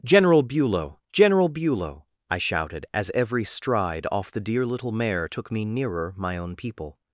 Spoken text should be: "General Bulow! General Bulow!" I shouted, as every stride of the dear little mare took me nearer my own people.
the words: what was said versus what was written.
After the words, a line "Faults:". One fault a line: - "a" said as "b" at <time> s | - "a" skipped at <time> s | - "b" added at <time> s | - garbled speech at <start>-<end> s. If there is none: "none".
"General Bulow! General Bulow!" I shouted, as every stride off the dear little mare took me nearer my own people.
Faults:
- "of" said as "off" at 4.1 s